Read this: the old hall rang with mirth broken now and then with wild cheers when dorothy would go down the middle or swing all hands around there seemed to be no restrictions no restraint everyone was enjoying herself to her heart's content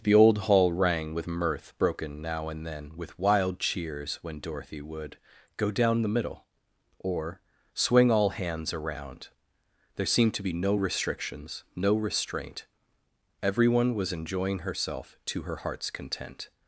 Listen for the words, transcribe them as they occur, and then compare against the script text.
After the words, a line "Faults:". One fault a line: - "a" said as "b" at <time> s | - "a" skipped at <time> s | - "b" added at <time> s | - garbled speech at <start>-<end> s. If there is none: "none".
the old hall rang with mirth broken now and then with wild cheers when dorothy would go down the middle or swing all hands around there seemed to be no restrictions no restraint everyone was enjoying herself to her heart's content
Faults:
none